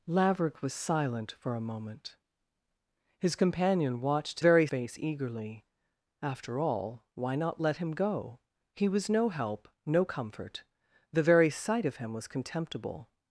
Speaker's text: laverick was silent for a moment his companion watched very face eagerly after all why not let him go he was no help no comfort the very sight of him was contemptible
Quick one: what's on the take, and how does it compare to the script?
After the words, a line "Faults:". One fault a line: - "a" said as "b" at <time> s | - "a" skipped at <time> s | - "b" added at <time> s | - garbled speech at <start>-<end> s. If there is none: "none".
laverick was silent for a moment his companion watched very face eagerly after all why not let him go he was no help no comfort the very sight of him was contemptible
Faults:
none